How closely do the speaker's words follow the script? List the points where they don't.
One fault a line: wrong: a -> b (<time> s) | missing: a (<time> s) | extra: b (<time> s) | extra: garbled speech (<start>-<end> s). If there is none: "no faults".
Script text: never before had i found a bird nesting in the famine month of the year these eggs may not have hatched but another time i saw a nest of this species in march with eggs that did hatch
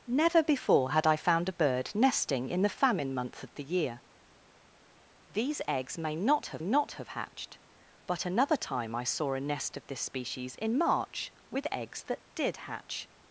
extra: not have (6.6 s)